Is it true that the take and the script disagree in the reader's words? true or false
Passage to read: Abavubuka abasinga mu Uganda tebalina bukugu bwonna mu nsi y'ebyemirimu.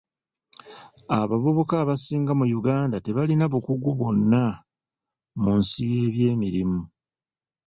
false